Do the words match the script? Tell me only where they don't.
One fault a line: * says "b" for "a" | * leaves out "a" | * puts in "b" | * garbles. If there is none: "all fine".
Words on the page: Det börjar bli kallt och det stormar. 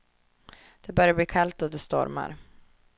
all fine